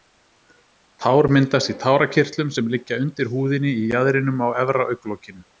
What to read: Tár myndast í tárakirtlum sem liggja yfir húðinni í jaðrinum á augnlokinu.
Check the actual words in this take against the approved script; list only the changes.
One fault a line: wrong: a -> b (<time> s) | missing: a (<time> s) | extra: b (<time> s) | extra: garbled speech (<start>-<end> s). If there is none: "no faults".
wrong: yfir -> undir (3.0 s)
extra: efra (4.7 s)